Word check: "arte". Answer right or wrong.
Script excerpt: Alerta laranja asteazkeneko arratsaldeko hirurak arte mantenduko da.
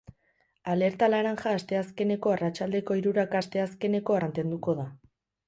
wrong